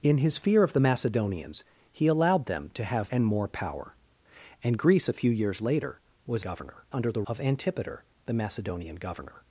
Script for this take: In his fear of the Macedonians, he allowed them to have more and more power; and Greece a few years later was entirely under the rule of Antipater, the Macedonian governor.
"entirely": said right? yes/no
no